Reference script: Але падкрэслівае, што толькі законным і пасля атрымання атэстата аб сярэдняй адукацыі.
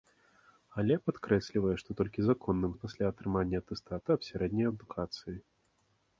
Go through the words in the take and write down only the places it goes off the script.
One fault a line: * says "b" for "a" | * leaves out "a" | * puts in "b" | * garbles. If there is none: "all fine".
all fine